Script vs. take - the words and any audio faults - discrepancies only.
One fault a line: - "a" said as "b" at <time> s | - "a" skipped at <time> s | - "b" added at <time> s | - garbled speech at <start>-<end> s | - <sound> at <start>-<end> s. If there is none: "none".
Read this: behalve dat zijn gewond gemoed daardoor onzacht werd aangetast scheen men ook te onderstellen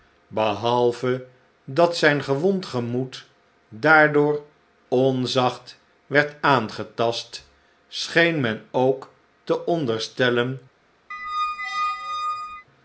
- squeak at 11.1-12.7 s